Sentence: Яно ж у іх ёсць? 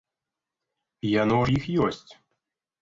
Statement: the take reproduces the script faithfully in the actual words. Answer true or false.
false